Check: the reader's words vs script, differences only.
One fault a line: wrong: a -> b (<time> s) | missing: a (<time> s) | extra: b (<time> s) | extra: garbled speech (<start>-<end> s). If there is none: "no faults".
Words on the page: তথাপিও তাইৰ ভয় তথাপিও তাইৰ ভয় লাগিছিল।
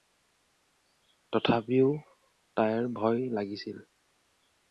missing: তথাপিও তাইৰ ভয় (3.2 s)